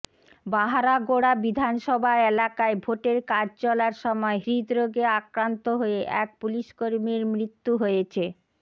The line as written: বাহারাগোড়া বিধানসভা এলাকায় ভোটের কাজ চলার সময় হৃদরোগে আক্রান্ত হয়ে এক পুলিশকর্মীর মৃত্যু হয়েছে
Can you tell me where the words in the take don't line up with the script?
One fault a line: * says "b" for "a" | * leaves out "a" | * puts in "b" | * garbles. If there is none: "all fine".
all fine